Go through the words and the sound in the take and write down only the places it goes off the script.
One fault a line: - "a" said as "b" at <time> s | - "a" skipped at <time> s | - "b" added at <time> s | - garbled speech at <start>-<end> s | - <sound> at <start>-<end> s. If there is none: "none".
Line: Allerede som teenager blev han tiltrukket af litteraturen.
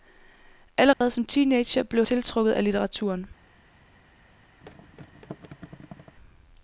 - dropout at 0.9-1.0 s
- "han" skipped at 2.0 s
- thud at 4.6-6.2 s